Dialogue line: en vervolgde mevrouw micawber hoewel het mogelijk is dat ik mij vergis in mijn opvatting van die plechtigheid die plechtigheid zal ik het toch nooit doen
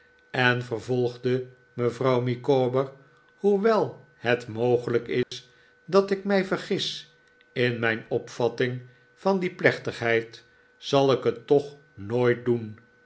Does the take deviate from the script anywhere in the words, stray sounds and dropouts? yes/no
yes